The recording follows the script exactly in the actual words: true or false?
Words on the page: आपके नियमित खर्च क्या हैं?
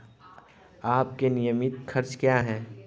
true